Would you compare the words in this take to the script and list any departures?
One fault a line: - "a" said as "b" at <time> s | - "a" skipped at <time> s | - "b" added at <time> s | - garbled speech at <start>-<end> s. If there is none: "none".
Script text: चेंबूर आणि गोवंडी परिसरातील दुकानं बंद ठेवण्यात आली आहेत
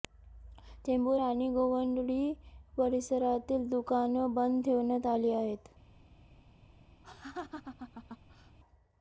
none